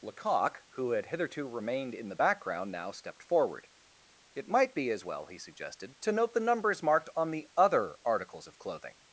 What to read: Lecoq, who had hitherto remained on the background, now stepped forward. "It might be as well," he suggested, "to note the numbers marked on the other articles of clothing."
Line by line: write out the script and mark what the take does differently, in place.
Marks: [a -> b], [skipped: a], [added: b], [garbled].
Lecoq, who had hitherto remained [on -> in] the background, now stepped forward. "It might be as well," he suggested, "to note the numbers marked on the other articles of clothing."